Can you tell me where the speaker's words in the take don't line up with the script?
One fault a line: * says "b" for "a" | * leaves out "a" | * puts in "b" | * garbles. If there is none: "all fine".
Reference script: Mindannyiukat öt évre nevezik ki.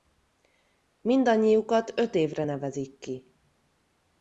all fine